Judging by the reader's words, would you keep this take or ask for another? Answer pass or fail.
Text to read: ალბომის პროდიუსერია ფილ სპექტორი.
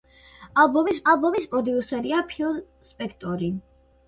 fail